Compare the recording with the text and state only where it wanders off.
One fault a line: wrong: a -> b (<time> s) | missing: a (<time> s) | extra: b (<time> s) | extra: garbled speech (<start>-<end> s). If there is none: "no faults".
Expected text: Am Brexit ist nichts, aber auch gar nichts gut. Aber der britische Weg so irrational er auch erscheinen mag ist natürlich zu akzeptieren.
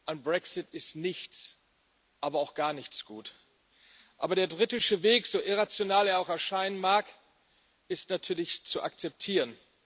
no faults